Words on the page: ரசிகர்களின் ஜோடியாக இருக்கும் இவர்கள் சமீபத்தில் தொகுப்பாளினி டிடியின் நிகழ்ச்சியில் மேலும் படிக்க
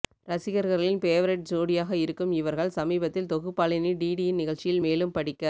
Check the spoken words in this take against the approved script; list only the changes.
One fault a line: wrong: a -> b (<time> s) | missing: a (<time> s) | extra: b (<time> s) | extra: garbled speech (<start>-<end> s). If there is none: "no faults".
extra: பேவரைட் (1.0 s)